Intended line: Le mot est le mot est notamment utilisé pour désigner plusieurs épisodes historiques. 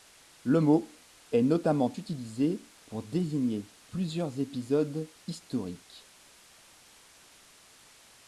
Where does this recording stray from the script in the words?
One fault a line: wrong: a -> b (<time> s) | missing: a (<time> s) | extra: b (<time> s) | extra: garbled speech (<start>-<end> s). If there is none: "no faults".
missing: le mot est (1.4 s)